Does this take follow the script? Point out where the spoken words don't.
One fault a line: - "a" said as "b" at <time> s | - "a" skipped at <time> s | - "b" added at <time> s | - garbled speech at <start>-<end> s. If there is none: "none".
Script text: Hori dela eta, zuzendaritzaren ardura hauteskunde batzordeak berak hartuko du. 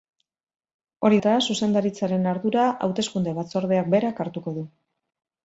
- "dela" skipped at 1.2 s